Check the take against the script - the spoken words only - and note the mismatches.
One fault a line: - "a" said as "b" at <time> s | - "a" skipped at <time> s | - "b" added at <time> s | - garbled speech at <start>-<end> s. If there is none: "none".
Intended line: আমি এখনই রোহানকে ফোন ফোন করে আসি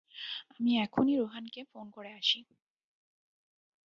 - "ফোন" skipped at 1.9 s